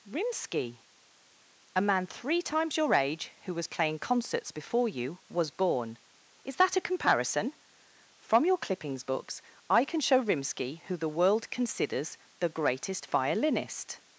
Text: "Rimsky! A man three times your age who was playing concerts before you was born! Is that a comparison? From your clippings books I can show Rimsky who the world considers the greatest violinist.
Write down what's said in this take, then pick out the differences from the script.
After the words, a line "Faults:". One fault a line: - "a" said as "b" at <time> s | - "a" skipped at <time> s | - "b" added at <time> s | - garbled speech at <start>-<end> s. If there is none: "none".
"Rimsky! A man three times your age who was playing concerts before you was born! Is that a comparison? From your clippings books I can show Rimsky who the world considers the greatest violinist.
Faults:
none